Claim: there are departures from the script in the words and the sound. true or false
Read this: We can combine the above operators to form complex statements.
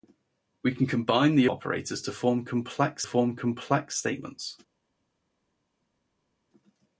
true